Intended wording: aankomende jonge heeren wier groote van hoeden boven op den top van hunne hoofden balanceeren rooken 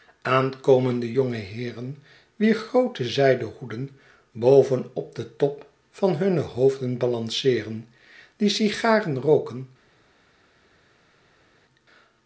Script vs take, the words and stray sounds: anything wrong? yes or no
yes